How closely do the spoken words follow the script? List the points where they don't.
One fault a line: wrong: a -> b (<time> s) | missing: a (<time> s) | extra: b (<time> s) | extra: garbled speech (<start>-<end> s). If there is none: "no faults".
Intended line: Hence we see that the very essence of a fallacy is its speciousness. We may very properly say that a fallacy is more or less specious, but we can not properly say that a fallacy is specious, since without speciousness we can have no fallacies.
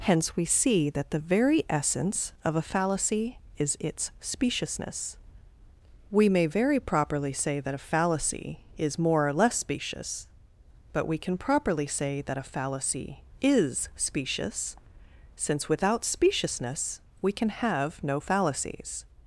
missing: not (11.4 s)